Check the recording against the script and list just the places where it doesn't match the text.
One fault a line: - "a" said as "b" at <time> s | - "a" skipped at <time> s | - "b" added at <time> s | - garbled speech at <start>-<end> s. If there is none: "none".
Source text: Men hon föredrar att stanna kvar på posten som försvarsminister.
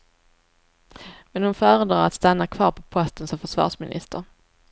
none